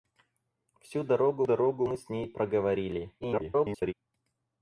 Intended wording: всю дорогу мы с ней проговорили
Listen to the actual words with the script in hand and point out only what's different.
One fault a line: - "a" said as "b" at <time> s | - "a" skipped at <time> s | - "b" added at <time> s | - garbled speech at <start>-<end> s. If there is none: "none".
- "дорогу" added at 1.4 s
- garbled speech at 3.2-3.9 s